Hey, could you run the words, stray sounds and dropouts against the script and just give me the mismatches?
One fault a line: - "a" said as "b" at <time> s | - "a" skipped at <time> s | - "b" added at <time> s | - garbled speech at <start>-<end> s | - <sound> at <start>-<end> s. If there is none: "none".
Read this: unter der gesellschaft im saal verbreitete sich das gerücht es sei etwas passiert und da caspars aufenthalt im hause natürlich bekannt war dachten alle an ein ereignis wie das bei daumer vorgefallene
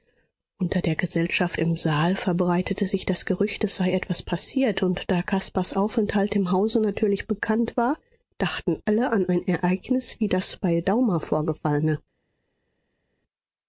none